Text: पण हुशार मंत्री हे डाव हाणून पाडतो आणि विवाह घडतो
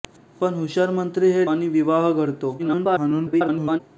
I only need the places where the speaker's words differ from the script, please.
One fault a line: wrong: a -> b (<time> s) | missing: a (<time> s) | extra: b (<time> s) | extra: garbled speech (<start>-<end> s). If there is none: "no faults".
missing: डाव हाणून पाडतो (1.4 s)
extra: garbled speech (2.6-3.8 s)